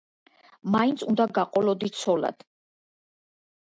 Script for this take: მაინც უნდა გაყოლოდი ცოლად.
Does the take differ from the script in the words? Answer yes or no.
no